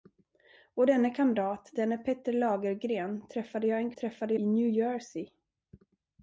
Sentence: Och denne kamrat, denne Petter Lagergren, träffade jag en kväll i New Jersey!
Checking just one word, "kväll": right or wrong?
wrong